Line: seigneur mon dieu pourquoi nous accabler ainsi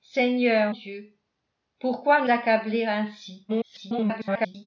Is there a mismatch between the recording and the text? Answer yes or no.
yes